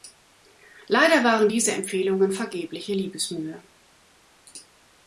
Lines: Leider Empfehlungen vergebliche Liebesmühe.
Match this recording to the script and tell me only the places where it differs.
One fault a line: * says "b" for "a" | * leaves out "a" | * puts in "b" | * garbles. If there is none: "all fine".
* puts in "waren diese"